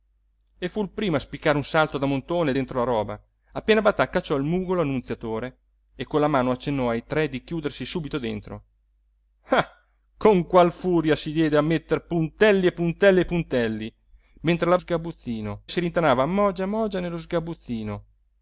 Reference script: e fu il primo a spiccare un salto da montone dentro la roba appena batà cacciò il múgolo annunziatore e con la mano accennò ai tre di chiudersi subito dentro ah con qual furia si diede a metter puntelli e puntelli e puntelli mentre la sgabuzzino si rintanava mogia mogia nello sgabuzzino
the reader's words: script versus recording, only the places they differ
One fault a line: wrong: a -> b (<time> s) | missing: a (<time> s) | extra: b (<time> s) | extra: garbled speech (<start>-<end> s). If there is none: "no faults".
no faults